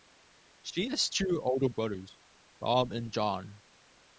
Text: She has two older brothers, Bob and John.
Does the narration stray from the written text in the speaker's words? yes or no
no